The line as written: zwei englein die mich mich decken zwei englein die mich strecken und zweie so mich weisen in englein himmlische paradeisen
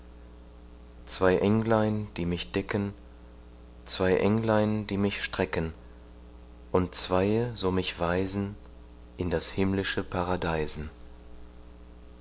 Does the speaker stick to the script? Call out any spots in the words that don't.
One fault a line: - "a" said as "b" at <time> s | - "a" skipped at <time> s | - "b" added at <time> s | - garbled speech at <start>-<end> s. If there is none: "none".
- "mich" skipped at 2.5 s
- "englein" said as "das" at 9.3 s